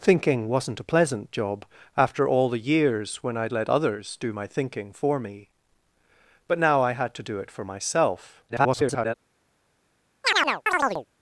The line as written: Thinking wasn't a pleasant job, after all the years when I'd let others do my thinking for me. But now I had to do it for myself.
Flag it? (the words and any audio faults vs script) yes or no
yes